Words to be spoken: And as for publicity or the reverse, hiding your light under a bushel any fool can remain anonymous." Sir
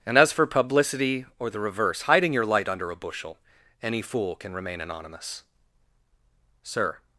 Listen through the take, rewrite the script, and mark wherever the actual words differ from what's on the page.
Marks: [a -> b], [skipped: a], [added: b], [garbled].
And as for publicity or the reverse, hiding your light under a bushel any fool can remain anonymous." Sir